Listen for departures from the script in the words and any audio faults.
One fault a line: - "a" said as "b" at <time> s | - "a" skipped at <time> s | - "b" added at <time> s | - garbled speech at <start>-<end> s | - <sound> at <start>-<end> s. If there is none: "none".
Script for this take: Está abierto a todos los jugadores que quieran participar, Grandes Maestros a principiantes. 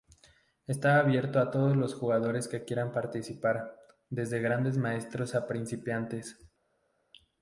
- "desde" added at 4.1 s